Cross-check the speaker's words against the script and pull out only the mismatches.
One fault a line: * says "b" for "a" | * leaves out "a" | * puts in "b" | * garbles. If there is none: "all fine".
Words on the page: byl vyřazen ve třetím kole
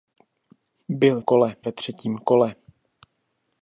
* says "kole" for "vyřazen"